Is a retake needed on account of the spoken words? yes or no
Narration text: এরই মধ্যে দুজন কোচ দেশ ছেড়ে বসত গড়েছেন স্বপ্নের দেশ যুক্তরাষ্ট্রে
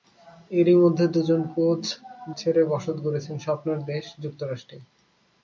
yes